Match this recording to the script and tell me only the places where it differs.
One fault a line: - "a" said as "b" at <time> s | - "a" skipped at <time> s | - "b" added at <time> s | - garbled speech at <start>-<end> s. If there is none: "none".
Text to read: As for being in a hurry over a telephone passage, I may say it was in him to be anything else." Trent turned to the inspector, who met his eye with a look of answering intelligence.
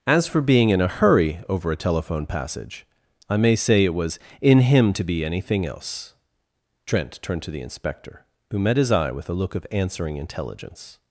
none